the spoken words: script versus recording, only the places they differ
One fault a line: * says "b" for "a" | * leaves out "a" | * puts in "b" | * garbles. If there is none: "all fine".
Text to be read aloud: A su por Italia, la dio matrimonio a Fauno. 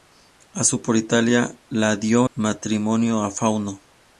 all fine